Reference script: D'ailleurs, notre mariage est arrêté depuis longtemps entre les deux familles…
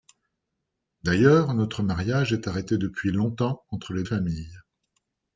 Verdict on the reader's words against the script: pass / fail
fail